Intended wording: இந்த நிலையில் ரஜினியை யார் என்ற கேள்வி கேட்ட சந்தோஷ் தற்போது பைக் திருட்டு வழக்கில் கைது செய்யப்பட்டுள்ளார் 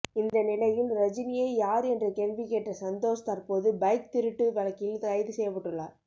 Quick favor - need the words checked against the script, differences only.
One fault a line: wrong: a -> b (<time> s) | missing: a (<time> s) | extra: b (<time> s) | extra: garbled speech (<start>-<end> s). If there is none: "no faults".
no faults